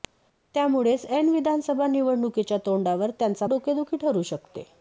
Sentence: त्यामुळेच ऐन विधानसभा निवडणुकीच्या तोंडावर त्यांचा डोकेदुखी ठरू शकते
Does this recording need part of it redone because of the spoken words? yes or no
no